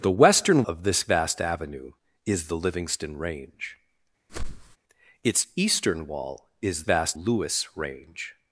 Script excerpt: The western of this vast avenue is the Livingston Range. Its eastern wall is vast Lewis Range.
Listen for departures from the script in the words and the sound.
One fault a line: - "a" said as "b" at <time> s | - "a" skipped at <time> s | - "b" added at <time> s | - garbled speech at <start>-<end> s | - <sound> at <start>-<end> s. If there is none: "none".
- whoosh at 4.3-4.8 s